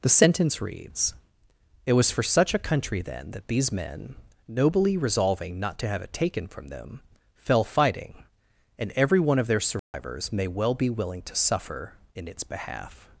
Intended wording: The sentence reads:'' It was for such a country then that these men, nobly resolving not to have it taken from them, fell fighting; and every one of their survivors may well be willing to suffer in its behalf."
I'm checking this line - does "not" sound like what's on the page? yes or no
yes